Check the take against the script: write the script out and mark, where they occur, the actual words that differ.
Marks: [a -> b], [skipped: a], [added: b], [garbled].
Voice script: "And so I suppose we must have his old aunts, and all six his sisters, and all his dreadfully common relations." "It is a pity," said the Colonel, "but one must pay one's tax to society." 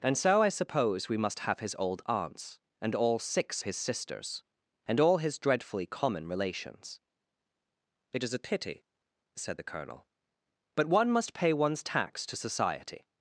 "And so I suppose we must have his old aunts, and all six his sisters, and all his dreadfully common relations." "It is a pity," said the Colonel, "but one must pay one's tax to society."